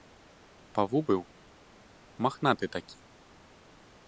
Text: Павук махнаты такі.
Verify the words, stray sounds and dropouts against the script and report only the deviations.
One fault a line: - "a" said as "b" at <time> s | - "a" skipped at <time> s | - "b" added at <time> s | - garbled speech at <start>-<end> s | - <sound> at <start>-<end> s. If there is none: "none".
- "быў" added at 1.1 s